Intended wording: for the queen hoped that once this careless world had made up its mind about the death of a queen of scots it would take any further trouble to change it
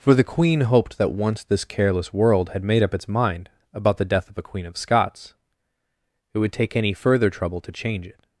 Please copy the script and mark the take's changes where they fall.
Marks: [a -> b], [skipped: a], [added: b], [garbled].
for the queen hoped that once this careless world had made up its mind about the death of a queen of scots it would take any further trouble to change it